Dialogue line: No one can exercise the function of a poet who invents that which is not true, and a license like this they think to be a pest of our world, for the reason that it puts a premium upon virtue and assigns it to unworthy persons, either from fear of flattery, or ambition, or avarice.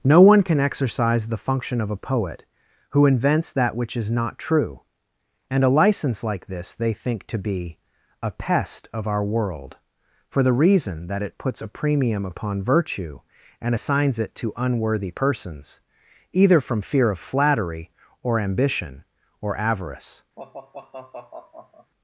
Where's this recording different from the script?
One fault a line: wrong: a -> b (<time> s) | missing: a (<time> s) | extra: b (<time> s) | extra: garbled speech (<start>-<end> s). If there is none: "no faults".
no faults